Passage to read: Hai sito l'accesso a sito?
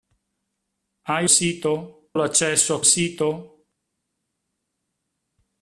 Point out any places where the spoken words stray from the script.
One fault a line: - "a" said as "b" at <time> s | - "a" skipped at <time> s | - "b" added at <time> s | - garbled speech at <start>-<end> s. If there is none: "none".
none